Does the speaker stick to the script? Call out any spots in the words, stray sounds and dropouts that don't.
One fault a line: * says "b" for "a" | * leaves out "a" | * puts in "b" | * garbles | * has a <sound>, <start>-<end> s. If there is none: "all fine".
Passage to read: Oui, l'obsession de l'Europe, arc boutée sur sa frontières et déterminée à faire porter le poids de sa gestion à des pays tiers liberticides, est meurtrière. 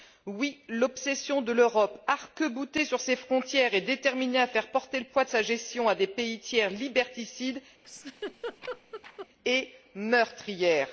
* says "ses" for "sa"
* has a laugh, 7.8-9.3 s